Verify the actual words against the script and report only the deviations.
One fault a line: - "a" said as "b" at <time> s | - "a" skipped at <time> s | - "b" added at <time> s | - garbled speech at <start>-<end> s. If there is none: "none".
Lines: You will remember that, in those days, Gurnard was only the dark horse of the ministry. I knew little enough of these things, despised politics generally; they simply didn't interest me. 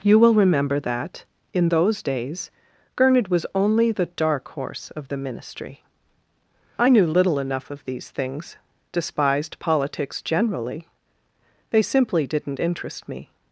none